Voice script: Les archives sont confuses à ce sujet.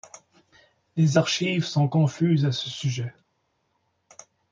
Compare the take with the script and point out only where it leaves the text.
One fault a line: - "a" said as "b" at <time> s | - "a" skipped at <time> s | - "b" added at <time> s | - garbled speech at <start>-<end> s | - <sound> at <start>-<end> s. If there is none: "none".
none